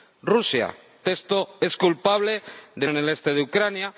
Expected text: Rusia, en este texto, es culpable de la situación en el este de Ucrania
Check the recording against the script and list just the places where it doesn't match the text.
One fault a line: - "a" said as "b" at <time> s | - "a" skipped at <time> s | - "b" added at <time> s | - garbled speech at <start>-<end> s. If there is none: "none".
- "en este" skipped at 0.8 s
- "la situación" skipped at 2.9 s